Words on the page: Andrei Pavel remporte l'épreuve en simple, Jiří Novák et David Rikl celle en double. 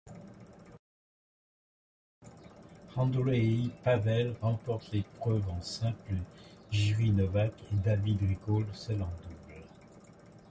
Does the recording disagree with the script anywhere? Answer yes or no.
no